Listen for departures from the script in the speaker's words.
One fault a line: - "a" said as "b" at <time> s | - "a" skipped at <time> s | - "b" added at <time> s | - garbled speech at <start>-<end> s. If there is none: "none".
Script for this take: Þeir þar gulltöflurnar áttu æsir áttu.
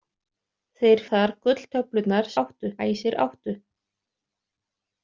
none